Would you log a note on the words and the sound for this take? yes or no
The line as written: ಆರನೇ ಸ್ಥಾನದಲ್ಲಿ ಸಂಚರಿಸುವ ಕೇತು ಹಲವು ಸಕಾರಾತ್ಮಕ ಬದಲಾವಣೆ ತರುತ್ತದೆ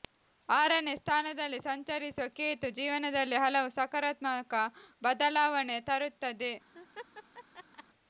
yes